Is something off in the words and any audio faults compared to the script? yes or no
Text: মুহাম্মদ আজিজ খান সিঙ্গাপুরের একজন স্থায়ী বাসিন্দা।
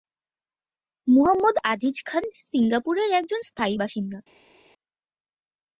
no